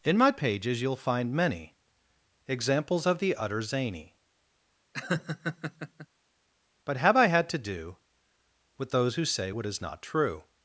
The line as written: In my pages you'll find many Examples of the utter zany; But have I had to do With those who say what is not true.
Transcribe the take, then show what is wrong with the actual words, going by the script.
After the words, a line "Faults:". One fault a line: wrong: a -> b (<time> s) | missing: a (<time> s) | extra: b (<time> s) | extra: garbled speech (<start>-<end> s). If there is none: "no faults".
In my pages you'll find many Examples of the utter zany; But have I had to do With those who say what is not true.
Faults:
no faults